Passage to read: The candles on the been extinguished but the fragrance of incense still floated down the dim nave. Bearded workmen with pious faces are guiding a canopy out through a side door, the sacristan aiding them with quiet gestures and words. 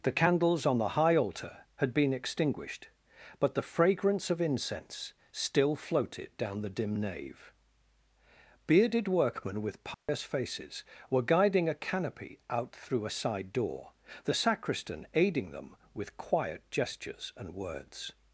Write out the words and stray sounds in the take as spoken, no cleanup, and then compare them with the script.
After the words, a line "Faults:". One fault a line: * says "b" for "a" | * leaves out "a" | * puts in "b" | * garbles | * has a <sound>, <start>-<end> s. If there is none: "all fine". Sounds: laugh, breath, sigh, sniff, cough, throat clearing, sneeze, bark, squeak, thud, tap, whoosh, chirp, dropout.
The candles on the high altar had been extinguished but the fragrance of incense still floated down the dim nave. Bearded workmen with pious faces were guiding a canopy out through a side door, the sacristan aiding them with quiet gestures and words.
Faults:
* puts in "high altar had"
* has a dropout, 9.9-10.1 s
* says "were" for "are"